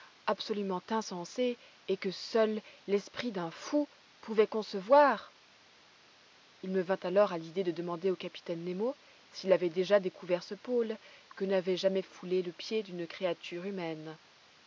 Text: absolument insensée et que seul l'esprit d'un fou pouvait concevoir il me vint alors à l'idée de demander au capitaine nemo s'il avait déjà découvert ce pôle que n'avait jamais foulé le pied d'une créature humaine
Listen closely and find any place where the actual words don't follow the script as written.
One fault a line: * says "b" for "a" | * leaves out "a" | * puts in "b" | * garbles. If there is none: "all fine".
all fine